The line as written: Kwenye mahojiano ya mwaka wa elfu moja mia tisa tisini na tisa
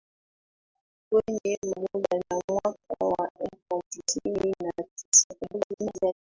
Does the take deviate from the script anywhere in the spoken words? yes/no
yes